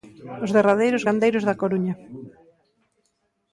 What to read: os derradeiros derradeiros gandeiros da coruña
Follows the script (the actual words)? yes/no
no